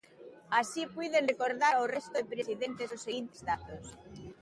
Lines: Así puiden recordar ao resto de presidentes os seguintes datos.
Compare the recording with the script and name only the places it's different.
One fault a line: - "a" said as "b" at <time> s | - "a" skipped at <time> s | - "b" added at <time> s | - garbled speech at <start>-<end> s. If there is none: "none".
none